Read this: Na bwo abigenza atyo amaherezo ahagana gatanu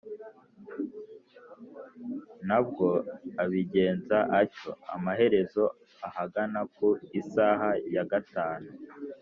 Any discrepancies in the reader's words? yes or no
yes